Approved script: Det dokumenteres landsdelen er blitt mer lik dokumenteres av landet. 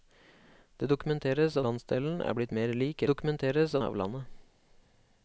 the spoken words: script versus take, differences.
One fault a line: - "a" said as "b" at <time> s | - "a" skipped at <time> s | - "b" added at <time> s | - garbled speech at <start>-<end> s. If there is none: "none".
none